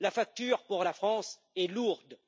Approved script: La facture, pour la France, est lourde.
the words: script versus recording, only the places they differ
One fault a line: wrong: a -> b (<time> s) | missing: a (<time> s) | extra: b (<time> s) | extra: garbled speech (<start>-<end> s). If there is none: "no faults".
no faults